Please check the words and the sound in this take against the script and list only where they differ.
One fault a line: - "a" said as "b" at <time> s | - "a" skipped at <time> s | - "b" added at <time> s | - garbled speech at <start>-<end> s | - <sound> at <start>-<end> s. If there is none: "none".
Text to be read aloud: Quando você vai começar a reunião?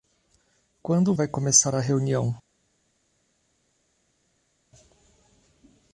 - "você" skipped at 1.1 s